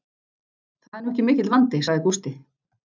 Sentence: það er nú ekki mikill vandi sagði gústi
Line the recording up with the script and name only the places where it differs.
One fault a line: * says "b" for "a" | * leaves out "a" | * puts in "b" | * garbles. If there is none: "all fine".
all fine